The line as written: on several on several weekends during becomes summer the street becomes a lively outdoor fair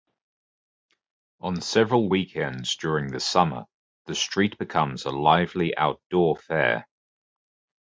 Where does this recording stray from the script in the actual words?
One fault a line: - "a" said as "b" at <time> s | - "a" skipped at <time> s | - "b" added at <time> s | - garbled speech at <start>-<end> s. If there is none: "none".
- "on several" skipped at 2.1 s
- "becomes" said as "the" at 3.1 s